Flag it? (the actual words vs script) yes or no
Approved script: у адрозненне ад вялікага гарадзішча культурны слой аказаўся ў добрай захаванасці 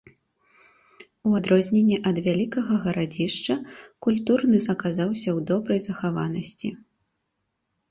yes